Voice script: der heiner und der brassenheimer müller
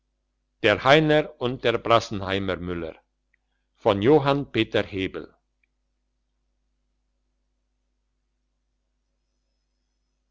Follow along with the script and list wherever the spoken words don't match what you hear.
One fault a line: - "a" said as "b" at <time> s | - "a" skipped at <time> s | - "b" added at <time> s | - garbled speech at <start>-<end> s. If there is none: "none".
none